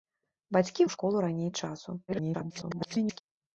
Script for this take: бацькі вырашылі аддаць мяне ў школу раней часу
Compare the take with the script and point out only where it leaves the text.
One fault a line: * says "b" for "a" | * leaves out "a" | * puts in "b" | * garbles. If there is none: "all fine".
* leaves out "вырашылі аддаць мяне"
* garbles